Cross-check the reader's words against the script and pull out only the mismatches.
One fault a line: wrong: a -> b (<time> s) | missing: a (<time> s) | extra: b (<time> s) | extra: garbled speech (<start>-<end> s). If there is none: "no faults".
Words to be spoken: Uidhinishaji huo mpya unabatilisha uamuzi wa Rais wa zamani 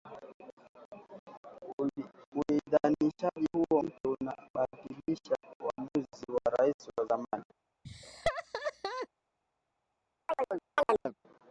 no faults